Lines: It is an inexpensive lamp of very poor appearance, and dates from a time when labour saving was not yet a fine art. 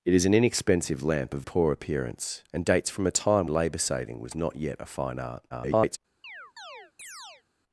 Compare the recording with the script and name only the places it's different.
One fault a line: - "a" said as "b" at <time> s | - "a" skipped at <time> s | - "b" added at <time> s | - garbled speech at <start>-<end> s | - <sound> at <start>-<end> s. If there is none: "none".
- "very" skipped at 1.4 s
- "when" skipped at 3.5 s
- garbled speech at 5.5-6.0 s
- chirp at 6.2-7.4 s